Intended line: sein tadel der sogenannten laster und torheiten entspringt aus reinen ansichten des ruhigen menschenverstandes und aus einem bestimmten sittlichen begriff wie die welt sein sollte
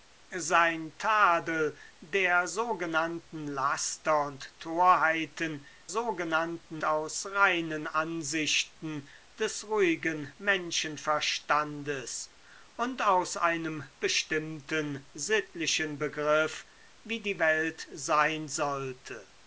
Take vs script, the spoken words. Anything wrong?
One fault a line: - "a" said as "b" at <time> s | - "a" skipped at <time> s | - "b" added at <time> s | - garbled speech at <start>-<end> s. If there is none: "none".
- "entspringt" said as "sogenannten" at 5.9 s